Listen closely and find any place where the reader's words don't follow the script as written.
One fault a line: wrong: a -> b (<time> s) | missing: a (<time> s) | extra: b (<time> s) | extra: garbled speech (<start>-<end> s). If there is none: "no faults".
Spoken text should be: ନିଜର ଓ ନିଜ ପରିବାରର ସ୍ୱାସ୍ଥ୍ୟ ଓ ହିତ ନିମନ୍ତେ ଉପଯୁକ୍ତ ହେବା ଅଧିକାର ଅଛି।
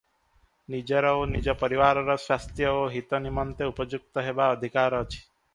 no faults